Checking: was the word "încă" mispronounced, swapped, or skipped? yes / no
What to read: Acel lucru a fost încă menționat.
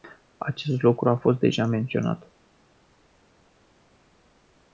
yes